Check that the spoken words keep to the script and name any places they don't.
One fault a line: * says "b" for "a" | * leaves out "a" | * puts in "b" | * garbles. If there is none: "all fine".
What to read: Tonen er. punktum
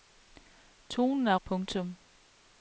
all fine